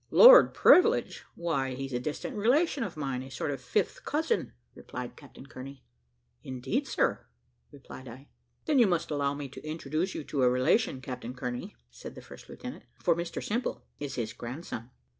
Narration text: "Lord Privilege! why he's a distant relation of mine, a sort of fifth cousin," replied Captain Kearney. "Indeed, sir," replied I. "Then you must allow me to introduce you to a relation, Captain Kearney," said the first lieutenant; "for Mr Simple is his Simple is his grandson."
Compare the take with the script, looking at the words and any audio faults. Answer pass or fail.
fail